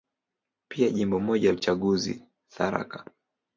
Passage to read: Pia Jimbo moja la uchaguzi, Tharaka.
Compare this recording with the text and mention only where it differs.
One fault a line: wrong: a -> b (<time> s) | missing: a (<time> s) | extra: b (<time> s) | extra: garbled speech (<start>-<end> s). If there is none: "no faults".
missing: la (1.5 s)